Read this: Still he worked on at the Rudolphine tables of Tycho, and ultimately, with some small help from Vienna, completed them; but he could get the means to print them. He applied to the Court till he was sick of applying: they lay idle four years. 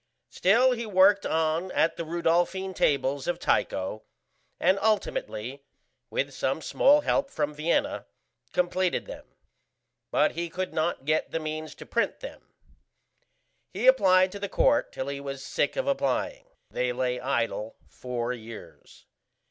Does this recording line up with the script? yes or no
no